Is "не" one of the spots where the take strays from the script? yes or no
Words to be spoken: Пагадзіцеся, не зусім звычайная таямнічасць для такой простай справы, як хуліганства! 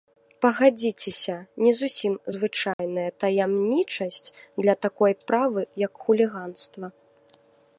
no